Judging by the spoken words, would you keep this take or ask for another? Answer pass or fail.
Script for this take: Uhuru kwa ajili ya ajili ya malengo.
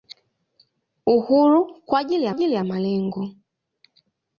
pass